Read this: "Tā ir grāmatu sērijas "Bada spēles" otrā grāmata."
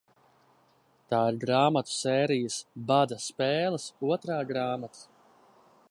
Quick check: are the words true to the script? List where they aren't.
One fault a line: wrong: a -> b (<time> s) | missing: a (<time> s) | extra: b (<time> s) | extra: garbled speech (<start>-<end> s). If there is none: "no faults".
no faults